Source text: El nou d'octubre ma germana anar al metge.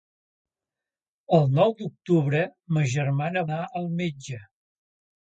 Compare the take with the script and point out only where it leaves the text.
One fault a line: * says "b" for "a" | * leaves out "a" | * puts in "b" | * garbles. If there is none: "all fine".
all fine